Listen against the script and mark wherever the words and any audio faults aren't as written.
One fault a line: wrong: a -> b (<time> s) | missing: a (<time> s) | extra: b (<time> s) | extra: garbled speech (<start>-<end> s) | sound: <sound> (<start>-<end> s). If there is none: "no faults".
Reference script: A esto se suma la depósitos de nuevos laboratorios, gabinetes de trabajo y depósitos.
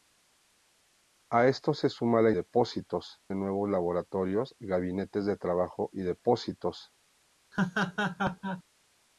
sound: laugh (7.5-8.6 s)